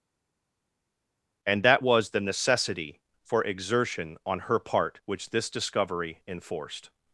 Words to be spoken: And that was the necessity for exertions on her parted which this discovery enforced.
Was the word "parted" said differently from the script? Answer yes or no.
yes